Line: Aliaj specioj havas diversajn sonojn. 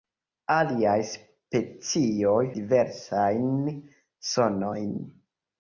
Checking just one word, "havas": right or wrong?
wrong